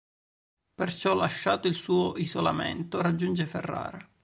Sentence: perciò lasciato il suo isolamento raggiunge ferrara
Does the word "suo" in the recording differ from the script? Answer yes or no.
no